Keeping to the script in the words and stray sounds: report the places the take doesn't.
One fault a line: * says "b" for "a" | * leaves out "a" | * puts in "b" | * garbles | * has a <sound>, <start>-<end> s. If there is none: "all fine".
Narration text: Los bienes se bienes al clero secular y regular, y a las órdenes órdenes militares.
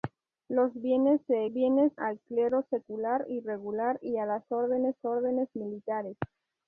all fine